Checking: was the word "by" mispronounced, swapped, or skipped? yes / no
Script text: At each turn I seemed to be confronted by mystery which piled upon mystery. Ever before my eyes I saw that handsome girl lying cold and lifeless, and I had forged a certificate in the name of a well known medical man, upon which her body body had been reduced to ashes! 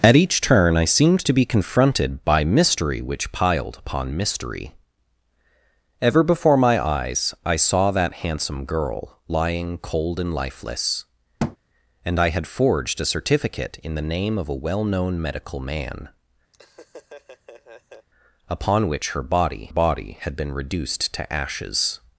no